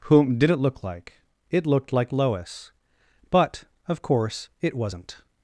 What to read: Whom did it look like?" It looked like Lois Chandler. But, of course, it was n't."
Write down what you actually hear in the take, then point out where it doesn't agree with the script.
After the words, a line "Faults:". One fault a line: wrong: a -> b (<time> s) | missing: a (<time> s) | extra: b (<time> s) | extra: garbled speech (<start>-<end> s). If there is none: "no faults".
Whom did it look like?" It looked like Lois. But, of course, it was n't."
Faults:
missing: Chandler (2.7 s)